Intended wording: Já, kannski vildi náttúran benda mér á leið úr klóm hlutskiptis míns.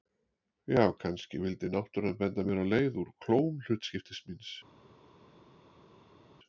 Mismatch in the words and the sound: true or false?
false